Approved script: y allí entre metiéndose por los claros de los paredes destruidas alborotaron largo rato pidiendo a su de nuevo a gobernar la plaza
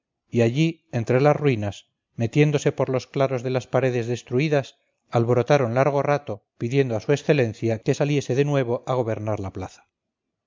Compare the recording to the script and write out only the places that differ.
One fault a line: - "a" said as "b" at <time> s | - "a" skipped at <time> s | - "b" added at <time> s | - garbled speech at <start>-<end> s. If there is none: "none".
- "las ruinas" added at 1.2 s
- "los" said as "las" at 3.5 s
- "excelencia que saliese" added at 7.1 s